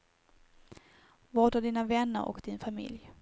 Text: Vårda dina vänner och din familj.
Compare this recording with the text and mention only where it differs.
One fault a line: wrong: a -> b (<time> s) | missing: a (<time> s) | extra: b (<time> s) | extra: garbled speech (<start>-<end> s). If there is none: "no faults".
no faults